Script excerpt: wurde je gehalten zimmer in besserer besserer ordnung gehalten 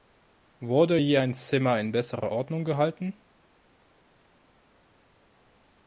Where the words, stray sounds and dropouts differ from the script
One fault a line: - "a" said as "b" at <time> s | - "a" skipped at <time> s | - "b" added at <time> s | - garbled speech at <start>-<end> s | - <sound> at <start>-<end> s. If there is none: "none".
- "gehalten" said as "ein" at 1.2 s
- "besserer" skipped at 2.3 s